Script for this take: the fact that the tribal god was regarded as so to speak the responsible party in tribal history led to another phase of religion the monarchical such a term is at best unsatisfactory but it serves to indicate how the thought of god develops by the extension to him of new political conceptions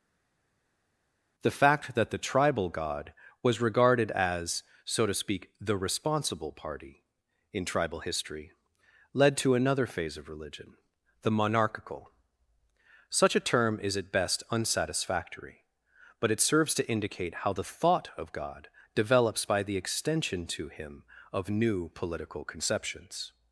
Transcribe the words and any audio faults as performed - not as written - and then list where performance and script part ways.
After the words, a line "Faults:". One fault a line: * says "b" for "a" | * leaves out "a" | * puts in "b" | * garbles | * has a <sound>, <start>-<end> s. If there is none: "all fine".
the fact that the tribal god was regarded as so to speak the responsible party in tribal history led to another phase of religion the monarchical such a term is at best unsatisfactory but it serves to indicate how the thought of god develops by the extension to him of new political conceptions
Faults:
all fine